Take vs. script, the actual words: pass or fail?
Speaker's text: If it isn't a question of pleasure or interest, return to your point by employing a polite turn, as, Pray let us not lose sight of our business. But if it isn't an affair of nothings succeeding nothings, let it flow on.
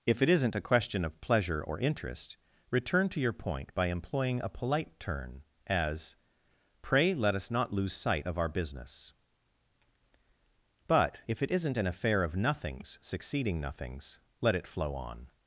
pass